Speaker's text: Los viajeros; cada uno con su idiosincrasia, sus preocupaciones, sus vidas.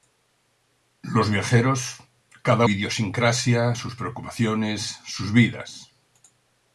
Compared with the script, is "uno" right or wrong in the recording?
wrong